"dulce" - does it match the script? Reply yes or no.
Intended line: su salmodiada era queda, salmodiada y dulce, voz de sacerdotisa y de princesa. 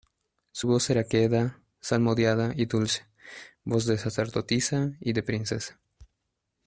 yes